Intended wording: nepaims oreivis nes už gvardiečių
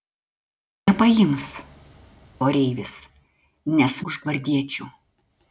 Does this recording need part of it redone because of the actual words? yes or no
no